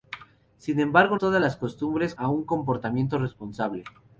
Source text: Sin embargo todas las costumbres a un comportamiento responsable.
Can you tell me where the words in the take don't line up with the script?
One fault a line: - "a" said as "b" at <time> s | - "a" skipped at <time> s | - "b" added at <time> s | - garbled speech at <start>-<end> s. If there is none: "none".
none